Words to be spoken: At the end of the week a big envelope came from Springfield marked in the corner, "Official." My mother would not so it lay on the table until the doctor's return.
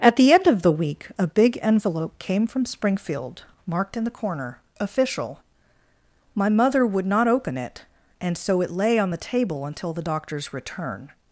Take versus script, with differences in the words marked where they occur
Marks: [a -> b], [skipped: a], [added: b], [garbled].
At the end of the week a big envelope came from Springfield marked in the corner, "Official." My mother would not [added: open it and] so it lay on the table until the doctor's return.